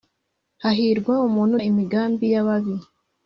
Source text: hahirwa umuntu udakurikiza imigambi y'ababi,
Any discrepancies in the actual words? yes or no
yes